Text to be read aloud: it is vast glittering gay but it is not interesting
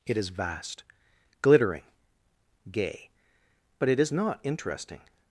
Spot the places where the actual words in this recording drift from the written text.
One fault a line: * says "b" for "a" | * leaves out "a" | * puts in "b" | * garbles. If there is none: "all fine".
all fine